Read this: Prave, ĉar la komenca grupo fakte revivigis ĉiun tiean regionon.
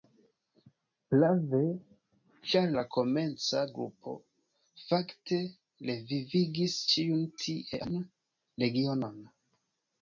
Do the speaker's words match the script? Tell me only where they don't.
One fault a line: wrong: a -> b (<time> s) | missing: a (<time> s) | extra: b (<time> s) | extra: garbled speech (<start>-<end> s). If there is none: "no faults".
no faults